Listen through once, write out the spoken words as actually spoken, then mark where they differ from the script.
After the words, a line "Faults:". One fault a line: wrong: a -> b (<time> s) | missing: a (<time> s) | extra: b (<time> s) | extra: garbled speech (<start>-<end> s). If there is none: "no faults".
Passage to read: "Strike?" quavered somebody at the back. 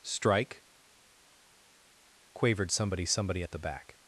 "Strike?" quavered somebody somebody at the back.
Faults:
extra: somebody (3.0 s)